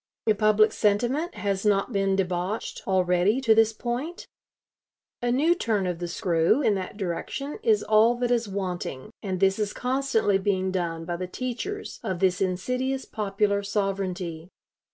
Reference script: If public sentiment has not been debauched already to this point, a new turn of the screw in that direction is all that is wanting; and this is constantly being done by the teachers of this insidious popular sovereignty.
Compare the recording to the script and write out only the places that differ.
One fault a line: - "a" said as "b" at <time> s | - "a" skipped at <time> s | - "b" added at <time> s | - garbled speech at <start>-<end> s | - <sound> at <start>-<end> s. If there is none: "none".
none